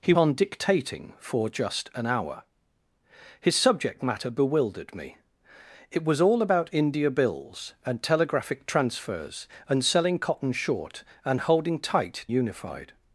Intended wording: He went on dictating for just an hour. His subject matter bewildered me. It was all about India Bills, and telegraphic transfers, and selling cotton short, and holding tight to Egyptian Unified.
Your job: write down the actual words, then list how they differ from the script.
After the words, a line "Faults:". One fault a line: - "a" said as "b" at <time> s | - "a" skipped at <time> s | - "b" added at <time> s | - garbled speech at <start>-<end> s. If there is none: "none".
He on dictating for just an hour. His subject matter bewildered me. It was all about India Bills, and telegraphic transfers, and selling cotton short, and holding tight Unified.
Faults:
- "went" skipped at 0.1 s
- "to Egyptian" skipped at 12.2 s